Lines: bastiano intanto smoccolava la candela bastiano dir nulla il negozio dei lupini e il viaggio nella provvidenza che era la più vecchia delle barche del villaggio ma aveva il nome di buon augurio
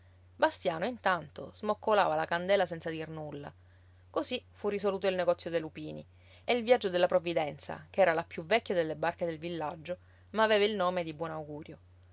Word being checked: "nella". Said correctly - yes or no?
no